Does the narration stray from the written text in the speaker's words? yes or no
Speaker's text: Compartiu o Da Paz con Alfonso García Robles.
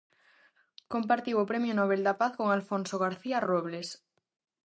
yes